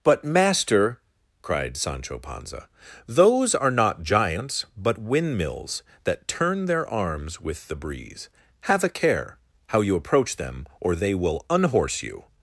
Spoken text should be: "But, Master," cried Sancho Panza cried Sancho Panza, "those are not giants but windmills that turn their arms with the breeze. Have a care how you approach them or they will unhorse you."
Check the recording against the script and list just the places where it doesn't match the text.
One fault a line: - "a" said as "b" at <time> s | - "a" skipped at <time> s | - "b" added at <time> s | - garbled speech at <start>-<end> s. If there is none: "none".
- "cried Sancho Panza" skipped at 2.7 s